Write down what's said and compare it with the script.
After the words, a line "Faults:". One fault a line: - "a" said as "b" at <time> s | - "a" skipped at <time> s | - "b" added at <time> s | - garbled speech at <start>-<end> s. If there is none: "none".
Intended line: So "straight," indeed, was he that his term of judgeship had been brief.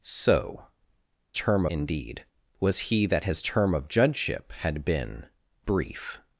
So "term," indeed, was he that his term of judgeship had been brief.
Faults:
- "straight" said as "term" at 1.3 s